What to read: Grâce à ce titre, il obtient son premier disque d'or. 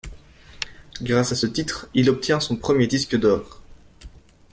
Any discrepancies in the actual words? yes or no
no